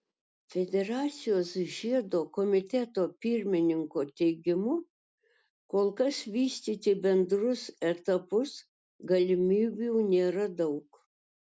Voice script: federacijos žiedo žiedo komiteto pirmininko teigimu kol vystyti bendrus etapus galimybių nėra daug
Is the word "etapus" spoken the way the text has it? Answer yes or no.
yes